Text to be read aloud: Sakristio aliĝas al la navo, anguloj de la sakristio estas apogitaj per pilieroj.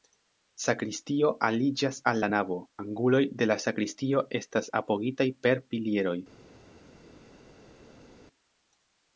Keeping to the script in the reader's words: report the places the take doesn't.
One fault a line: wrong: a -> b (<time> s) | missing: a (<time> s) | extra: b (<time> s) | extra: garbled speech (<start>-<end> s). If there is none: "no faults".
no faults